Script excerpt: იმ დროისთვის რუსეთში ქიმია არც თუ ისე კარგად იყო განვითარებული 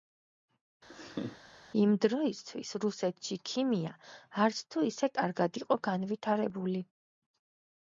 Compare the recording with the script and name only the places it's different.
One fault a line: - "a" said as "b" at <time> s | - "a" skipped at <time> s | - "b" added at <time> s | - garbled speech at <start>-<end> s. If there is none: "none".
none